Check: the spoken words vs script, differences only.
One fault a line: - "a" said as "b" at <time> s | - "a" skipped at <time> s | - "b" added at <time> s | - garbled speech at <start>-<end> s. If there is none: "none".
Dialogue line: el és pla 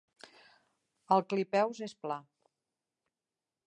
- "clipeus" added at 1.3 s